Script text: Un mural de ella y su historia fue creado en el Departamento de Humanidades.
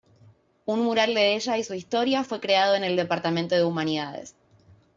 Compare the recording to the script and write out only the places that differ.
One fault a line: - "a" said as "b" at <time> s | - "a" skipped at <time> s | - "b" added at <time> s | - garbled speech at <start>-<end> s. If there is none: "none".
none